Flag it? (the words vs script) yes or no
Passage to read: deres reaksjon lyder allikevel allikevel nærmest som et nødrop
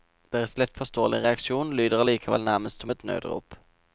yes